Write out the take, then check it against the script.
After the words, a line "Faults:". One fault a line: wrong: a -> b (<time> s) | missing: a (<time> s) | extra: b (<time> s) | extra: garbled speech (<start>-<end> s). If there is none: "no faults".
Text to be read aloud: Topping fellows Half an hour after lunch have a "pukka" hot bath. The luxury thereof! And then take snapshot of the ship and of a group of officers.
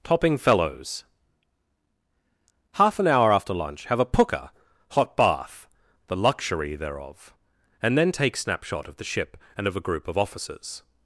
Topping fellows Half an hour after lunch have a "pukka" hot bath. The luxury thereof! And then take snapshot of the ship and of a group of officers.
Faults:
no faults